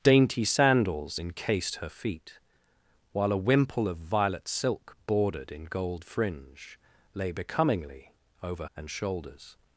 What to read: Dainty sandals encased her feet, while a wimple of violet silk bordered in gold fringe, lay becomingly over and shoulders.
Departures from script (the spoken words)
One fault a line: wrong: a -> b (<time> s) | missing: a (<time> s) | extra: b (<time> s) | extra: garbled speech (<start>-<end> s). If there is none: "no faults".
no faults